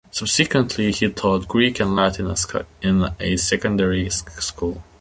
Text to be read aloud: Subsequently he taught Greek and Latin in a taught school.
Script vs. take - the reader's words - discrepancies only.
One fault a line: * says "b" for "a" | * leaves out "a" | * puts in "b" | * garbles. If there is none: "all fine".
* says "secondary" for "taught"